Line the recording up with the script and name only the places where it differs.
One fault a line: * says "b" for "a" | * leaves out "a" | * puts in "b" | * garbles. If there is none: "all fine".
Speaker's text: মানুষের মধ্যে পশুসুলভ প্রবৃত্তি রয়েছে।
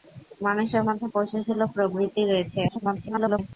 * garbles